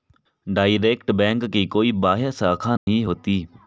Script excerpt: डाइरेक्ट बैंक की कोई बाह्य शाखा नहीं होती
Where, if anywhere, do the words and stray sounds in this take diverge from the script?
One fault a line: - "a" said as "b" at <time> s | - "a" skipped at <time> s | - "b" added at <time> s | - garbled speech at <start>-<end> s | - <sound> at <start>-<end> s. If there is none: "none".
- dropout at 2.8-2.9 s